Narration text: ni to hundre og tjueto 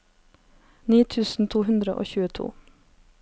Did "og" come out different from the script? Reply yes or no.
no